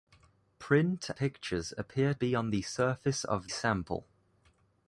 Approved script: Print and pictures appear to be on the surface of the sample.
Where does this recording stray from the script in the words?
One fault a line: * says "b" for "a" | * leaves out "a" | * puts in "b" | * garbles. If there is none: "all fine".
* leaves out "and"
* leaves out "to"
* leaves out "the"